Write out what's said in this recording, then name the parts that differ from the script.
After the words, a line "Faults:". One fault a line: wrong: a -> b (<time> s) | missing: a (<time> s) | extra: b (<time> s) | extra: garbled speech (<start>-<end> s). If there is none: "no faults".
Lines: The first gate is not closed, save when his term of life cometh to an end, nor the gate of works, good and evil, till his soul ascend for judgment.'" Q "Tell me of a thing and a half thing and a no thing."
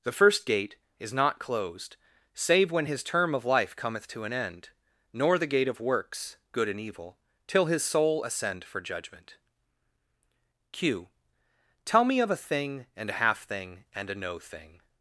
The first gate is not closed, save when his term of life cometh to an end, nor the gate of works, good and evil, till his soul ascend for judgment.'" Q "Tell me of a thing and a half thing and a no thing."
Faults:
no faults